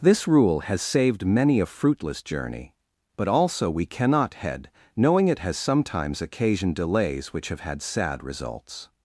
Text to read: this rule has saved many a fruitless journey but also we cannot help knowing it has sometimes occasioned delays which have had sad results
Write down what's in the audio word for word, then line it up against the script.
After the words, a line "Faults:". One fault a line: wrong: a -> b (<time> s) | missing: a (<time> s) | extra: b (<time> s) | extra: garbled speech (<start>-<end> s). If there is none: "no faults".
this rule has saved many a fruitless journey but also we cannot head knowing it has sometimes occasioned delays which have had sad results
Faults:
wrong: help -> head (4.3 s)